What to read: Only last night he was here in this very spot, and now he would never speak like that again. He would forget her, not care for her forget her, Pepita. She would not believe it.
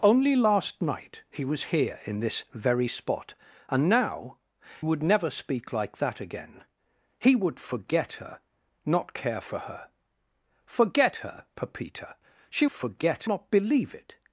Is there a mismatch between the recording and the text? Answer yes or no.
yes